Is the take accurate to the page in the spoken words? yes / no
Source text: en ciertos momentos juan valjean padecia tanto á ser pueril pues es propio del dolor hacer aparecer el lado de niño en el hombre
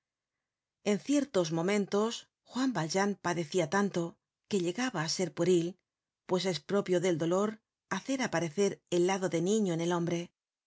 no